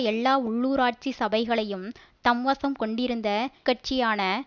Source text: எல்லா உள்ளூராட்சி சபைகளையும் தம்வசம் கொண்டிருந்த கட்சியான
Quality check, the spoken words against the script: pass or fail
pass